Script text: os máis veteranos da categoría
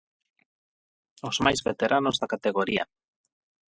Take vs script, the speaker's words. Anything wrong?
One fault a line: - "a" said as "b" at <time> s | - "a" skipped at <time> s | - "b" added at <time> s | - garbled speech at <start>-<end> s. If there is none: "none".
none